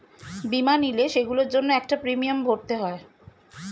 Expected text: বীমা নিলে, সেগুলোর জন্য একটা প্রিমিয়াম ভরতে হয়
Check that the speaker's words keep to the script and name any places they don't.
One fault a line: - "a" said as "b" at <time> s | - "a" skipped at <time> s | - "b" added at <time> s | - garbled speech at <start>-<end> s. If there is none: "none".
none